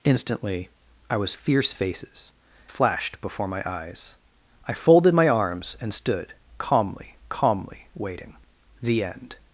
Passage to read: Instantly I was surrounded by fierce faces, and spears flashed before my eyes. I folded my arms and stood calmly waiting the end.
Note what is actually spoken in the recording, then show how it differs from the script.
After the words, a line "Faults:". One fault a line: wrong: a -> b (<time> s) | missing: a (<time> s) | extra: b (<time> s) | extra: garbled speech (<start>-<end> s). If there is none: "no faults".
Instantly I was fierce faces, flashed before my eyes. I folded my arms and stood calmly calmly waiting the end.
Faults:
missing: surrounded by (1.3 s)
missing: and spears (2.3 s)
extra: calmly (7.3 s)